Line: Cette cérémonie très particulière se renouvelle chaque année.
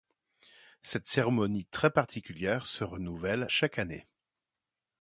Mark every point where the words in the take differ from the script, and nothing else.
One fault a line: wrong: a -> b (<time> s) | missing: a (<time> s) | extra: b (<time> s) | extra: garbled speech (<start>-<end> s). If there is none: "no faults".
no faults